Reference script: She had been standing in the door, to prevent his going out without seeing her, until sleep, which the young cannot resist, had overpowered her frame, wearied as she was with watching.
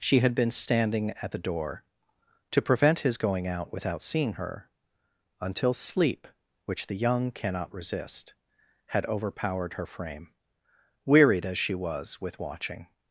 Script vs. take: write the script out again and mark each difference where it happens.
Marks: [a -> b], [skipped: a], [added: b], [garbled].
She had been standing [in -> at] the door, to prevent his going out without seeing her, until sleep, which the young cannot resist, had overpowered her frame, wearied as she was with watching.